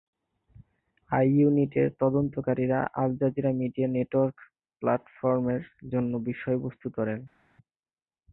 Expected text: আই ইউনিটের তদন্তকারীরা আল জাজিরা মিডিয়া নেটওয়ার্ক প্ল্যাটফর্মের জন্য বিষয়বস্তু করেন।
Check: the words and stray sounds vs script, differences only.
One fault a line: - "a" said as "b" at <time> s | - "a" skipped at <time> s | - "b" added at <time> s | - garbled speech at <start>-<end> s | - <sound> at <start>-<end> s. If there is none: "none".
none